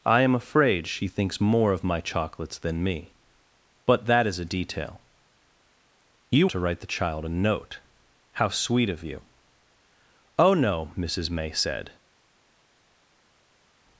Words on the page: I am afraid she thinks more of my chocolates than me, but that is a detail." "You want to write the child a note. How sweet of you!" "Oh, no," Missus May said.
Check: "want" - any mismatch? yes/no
yes